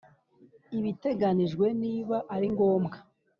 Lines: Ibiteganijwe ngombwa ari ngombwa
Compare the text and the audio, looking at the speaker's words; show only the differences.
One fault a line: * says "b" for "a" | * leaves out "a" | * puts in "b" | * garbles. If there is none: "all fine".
* says "niba" for "ngombwa"